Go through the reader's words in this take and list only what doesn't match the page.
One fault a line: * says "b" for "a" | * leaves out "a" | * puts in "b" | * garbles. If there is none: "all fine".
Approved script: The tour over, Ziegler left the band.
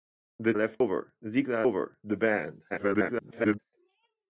* says "left" for "tour"
* says "over" for "left"
* garbles